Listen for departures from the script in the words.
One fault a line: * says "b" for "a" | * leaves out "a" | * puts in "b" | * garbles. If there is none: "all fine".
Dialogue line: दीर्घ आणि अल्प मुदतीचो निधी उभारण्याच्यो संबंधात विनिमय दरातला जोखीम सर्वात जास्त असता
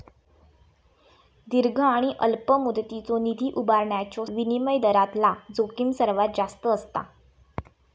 * leaves out "संबंधात"